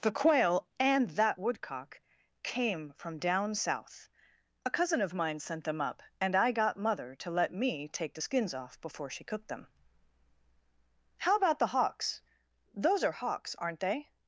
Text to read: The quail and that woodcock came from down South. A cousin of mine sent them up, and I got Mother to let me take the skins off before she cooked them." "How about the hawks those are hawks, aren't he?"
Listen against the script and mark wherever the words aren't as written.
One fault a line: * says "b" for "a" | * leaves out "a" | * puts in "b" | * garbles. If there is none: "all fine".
* says "they" for "he"